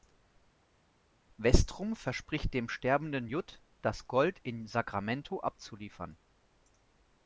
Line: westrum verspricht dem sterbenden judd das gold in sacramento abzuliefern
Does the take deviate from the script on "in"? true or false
false